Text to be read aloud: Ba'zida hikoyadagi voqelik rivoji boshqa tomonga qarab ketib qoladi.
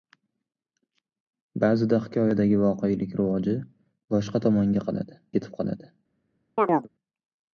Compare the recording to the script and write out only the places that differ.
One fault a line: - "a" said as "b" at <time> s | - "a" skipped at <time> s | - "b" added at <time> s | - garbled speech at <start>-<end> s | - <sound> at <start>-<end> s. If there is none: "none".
- "qarab" said as "qoladi" at 4.9 s
- chirp at 6.6-6.9 s